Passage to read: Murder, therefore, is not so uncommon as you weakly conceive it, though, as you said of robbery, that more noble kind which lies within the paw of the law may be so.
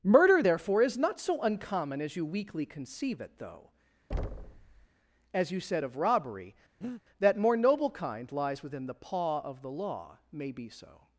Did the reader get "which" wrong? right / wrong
wrong